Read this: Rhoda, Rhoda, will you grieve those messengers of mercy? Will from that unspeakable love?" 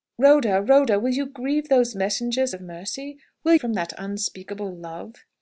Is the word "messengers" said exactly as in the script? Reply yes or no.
yes